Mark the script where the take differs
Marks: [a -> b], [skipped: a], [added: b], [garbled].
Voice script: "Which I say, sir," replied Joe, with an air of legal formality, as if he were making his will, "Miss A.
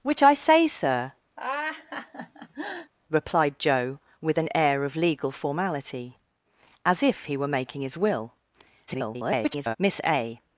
"Which I say, sir," replied Joe, with an air of legal formality, as if he were making his will, [garbled] "Miss A.